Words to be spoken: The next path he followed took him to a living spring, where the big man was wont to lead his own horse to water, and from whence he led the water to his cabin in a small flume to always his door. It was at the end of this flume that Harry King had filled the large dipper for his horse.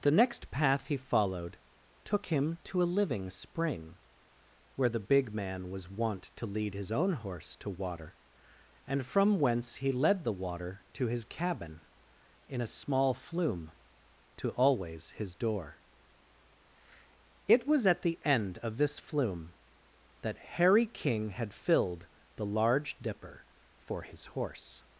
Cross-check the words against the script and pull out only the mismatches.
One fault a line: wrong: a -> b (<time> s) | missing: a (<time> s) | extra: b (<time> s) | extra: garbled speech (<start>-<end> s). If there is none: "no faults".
no faults